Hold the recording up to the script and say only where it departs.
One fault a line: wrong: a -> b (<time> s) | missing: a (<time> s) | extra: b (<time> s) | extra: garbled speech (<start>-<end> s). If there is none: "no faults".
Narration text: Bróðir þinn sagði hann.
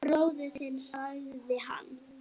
no faults